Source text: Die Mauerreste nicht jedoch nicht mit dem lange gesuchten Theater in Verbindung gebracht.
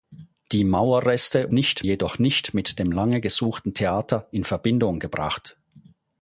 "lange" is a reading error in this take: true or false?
false